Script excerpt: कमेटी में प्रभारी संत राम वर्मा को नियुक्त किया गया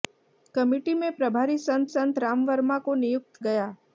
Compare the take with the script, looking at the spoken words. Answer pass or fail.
fail